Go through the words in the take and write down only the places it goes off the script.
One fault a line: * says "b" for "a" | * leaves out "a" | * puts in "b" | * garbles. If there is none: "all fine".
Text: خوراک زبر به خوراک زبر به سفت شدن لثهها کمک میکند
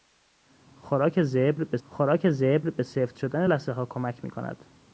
all fine